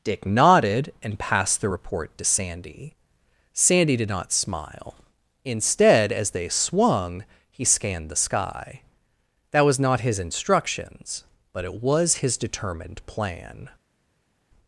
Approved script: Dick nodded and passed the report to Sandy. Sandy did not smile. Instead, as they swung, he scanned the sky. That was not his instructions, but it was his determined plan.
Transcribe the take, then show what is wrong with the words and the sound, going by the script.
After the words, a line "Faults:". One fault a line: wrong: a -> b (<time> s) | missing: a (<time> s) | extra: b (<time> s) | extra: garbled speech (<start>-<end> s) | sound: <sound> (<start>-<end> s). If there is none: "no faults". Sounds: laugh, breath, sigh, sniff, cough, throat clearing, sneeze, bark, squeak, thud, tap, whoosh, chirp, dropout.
Dick nodded and passed the report to Sandy. Sandy did not smile. Instead, as they swung, he scanned the sky. That was not his instructions, but it was his determined plan.
Faults:
no faults